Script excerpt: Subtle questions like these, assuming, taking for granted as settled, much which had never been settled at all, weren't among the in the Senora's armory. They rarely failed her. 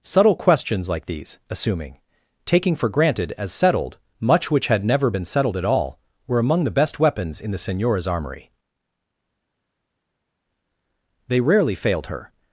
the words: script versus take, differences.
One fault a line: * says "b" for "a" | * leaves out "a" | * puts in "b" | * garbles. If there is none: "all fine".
* says "were" for "weren't"
* puts in "best weapons"